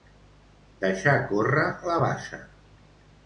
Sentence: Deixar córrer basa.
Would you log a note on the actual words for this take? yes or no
yes